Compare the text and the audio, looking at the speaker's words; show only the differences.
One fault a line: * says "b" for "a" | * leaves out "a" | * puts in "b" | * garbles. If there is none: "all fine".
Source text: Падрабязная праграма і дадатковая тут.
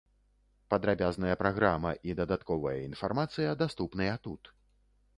* puts in "інфармацыя даступныя"